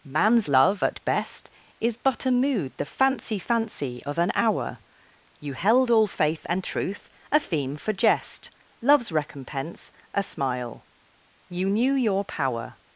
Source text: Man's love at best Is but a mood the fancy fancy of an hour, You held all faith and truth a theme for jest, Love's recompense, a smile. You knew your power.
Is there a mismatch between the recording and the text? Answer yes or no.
no